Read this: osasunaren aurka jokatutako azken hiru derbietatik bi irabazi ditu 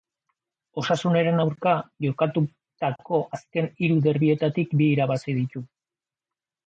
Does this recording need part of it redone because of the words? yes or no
no